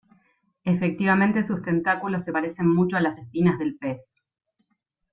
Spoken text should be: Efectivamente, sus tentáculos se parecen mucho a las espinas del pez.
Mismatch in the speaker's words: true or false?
false